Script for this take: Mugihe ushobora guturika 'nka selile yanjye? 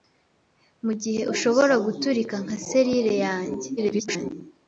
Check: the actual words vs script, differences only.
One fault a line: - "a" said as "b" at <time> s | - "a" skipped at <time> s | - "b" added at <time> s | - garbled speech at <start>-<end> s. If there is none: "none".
- garbled speech at 3.8-4.3 s